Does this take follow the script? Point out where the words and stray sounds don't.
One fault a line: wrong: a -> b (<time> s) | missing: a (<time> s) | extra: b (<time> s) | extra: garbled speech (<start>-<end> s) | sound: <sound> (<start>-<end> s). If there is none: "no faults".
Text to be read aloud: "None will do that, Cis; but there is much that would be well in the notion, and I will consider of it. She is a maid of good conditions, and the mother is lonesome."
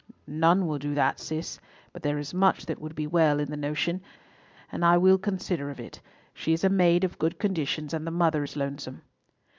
no faults